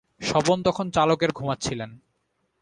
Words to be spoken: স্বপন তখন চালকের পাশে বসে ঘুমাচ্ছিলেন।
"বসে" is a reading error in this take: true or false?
true